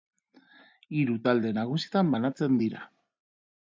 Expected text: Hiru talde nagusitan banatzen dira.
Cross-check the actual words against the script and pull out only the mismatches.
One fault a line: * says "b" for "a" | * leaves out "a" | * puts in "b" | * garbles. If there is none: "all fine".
all fine